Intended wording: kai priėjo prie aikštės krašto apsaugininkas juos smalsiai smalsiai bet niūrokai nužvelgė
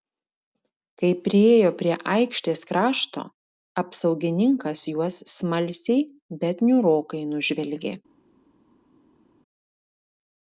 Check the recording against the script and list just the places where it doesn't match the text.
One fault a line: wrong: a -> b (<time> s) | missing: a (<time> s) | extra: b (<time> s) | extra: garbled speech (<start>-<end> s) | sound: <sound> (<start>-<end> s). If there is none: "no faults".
missing: smalsiai (6.1 s)